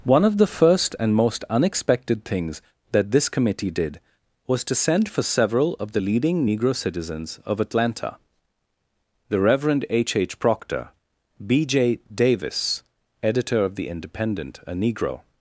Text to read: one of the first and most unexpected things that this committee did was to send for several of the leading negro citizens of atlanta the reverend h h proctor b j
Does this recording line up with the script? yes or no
no